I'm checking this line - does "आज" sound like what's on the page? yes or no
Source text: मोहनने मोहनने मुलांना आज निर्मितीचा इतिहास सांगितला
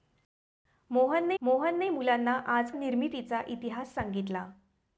yes